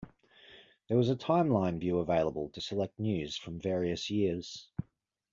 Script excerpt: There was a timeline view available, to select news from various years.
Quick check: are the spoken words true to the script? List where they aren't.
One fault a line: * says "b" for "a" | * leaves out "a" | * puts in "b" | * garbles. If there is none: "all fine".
all fine